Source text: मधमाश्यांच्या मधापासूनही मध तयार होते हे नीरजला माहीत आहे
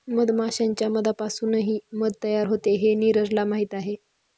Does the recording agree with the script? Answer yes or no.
yes